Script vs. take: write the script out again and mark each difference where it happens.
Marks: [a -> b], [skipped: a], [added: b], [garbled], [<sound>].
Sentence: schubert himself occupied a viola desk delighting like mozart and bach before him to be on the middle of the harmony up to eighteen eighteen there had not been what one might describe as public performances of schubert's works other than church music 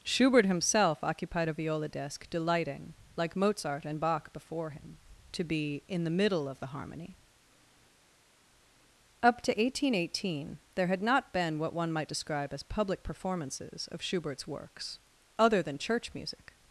schubert himself occupied a viola desk delighting like mozart and bach before him to be [on -> in] the middle of the harmony up to eighteen eighteen there had not been what one might describe as public performances of schubert's works other than church music